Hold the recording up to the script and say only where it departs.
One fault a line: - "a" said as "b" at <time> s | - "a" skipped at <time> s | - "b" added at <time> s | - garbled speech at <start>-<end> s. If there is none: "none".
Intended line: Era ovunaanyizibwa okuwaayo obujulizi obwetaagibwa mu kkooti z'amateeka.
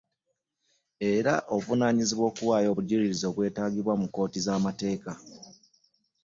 none